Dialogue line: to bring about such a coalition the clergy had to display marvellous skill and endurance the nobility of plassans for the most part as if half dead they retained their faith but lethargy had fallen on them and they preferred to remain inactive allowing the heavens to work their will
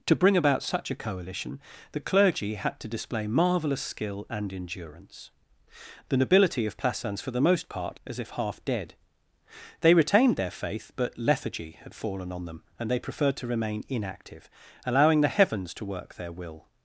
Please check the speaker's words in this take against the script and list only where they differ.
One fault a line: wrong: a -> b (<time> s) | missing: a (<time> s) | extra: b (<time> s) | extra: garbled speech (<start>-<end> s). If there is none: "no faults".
no faults